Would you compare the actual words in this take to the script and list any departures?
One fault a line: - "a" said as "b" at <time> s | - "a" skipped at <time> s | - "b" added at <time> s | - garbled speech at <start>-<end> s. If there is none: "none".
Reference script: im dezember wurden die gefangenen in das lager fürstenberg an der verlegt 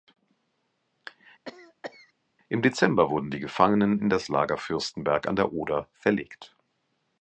- "oder" added at 5.5 s